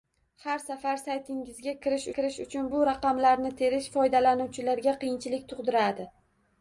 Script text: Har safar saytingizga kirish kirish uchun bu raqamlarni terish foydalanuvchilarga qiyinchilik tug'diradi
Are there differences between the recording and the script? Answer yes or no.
no